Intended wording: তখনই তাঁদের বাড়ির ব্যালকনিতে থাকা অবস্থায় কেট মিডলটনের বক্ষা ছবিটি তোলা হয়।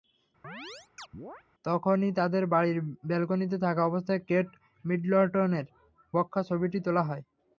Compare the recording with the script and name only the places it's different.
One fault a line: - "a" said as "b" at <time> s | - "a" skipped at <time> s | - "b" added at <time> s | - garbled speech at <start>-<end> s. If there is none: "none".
none